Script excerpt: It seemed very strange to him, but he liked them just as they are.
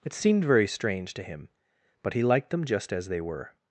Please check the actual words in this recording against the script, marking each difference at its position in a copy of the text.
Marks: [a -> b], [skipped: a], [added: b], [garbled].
It seemed very strange to him, but he liked them just as they [are. -> were]